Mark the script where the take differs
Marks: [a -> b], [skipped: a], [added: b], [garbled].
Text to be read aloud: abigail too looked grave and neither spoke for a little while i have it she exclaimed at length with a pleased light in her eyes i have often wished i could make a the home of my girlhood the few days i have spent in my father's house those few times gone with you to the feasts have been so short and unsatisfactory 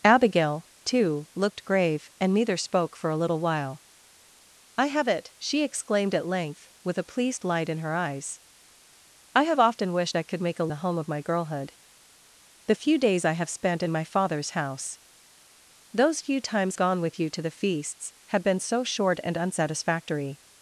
abigail too looked grave and neither spoke for a little while i have it she exclaimed at length with a pleased light in her eyes i have often wished i could make a the home of my girlhood the few days i have spent in my father's house those few times gone with you to the feasts have been so short and unsatisfactory